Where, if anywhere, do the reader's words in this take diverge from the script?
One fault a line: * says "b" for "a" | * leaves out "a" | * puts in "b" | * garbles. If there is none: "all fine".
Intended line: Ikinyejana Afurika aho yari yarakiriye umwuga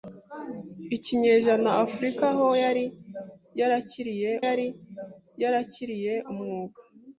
* puts in "yari yarakiriye"